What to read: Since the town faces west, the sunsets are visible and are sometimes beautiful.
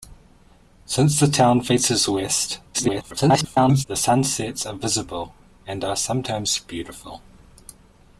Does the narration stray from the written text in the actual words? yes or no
yes